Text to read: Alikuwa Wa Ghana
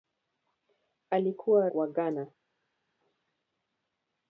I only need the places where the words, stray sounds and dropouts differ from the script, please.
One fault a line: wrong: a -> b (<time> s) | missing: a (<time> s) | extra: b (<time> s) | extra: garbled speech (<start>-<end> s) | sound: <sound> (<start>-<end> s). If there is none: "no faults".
no faults